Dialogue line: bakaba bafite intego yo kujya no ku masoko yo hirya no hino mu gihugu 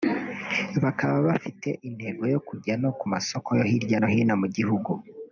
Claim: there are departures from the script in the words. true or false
false